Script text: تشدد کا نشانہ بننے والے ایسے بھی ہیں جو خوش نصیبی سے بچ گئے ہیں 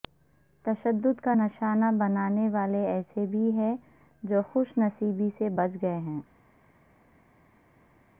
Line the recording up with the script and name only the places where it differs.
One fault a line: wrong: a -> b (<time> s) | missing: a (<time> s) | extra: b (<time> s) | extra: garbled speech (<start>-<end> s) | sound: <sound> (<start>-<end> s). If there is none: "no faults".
no faults